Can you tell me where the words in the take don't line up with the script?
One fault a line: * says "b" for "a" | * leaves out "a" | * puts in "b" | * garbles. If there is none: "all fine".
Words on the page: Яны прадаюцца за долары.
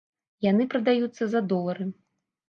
all fine